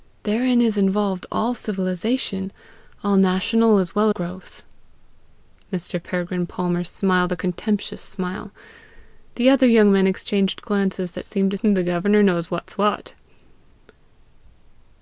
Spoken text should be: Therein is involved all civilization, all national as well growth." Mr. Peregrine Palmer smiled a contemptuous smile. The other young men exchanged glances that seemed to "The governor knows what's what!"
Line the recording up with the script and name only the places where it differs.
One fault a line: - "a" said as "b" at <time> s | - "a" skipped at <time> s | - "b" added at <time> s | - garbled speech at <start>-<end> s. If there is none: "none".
none